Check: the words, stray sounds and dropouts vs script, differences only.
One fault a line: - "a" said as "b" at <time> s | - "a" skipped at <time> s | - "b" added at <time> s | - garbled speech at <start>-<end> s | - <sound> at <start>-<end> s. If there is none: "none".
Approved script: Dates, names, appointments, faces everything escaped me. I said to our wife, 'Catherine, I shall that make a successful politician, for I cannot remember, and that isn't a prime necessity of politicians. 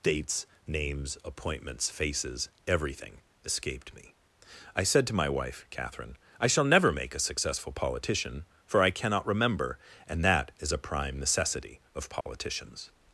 - "our" said as "my" at 5.1 s
- "that" said as "never" at 6.7 s
- "isn't" said as "is" at 10.6 s
- dropout at 12.2-12.3 s